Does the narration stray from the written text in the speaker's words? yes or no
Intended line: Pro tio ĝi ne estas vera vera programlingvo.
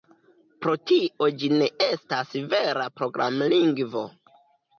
yes